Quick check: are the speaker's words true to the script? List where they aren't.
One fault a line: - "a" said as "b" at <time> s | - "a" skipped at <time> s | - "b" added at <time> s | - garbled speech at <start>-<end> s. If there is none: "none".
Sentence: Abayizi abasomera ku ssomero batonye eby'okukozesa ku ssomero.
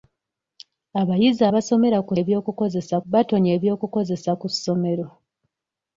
- "ssomero" said as "eby'okukozesa" at 2.2 s